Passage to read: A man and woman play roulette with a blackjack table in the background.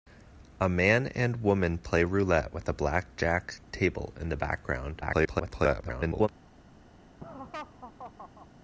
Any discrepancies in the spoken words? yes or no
yes